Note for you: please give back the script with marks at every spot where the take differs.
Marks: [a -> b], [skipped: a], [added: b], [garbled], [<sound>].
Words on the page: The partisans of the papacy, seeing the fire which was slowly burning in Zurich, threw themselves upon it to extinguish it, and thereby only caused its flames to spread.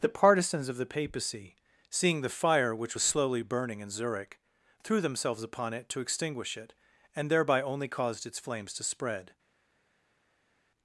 The partisans of the papacy, seeing the fire which was slowly burning in Zurich, threw themselves upon it to extinguish it, and thereby only caused its flames to spread.